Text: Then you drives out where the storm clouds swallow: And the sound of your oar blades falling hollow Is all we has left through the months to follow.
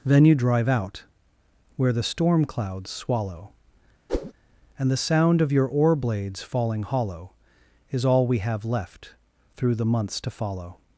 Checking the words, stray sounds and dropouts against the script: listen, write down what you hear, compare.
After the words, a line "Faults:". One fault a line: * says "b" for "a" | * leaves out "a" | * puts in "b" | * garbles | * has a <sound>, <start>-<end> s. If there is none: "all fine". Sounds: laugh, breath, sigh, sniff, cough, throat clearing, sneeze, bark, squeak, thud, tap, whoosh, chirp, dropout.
Then you drive out where the storm clouds swallow: And the sound of your oar blades falling hollow Is all we have left through the months to follow.
Faults:
* says "drive" for "drives"
* has a whoosh, 4.1-4.3 s
* says "have" for "has"